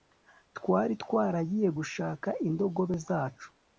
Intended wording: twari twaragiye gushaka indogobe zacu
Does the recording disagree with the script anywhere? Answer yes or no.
no